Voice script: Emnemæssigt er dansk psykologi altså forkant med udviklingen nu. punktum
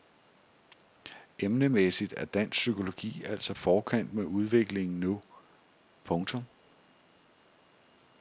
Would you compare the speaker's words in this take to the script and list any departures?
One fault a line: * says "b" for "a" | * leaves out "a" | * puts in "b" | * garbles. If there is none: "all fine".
all fine